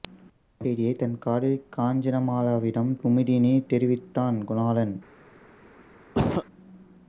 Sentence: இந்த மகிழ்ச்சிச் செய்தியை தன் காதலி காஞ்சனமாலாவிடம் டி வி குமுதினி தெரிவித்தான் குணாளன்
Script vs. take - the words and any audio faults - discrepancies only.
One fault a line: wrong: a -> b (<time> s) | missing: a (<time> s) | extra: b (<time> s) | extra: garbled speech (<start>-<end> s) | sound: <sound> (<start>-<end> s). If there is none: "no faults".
missing: மகிழ்ச்சிச் (0.7 s)
missing: டி வி (2.9 s)
sound: cough (6.1-6.5 s)